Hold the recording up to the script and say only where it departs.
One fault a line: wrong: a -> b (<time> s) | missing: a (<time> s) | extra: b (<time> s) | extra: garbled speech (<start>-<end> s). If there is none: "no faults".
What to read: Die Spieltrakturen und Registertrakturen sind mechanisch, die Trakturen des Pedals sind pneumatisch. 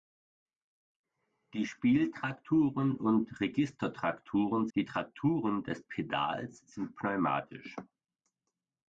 missing: sind mechanisch (4.7 s)